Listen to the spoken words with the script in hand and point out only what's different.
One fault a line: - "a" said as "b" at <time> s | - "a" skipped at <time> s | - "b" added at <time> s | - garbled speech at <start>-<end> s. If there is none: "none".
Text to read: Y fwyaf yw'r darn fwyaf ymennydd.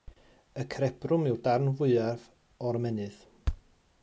- "fwyaf" said as "cerebrwm" at 0.8 s
- "o'r" added at 2.7 s